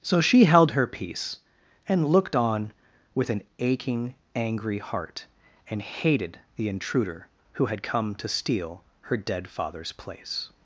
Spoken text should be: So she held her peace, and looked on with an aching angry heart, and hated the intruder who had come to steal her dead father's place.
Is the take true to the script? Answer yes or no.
yes